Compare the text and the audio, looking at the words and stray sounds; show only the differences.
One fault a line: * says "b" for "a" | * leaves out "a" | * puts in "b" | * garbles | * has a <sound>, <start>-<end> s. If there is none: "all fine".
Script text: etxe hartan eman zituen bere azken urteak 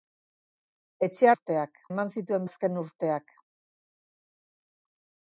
* says "urteak" for "hartan"
* leaves out "bere"